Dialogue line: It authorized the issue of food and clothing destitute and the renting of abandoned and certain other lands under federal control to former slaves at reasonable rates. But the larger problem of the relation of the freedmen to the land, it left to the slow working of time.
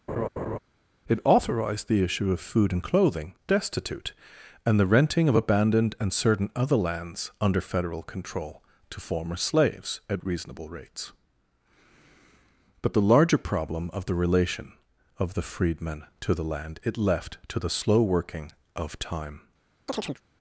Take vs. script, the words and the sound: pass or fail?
fail